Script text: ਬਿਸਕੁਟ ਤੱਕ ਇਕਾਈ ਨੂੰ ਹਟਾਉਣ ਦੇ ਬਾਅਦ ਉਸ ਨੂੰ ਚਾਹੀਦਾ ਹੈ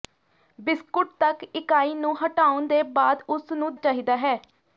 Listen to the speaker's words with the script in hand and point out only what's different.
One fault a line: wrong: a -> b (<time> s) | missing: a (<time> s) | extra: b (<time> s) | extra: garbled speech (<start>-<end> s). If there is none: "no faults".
no faults